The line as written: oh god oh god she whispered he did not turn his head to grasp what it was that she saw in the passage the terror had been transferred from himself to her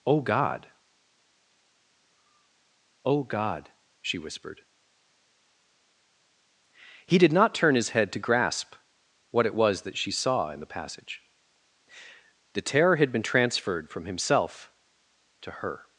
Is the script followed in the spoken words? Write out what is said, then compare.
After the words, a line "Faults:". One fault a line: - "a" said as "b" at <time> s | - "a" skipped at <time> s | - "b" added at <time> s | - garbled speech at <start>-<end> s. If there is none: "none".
oh god oh god she whispered he did not turn his head to grasp what it was that she saw in the passage the terror had been transferred from himself to her
Faults:
none